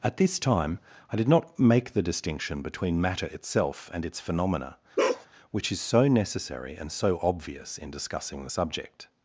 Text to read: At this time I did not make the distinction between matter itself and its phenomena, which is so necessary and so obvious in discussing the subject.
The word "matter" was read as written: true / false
true